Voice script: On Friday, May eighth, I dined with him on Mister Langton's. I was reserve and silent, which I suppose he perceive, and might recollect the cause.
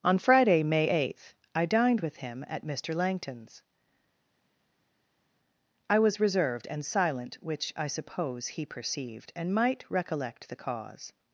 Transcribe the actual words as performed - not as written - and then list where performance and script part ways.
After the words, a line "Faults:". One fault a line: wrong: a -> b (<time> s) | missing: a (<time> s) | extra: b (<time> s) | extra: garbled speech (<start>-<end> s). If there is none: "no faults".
On Friday, May eighth, I dined with him at Mister Langton's. I was reserved and silent, which I suppose he perceived, and might recollect the cause.
Faults:
wrong: on -> at (2.5 s)
wrong: reserve -> reserved (6.2 s)
wrong: perceive -> perceived (8.7 s)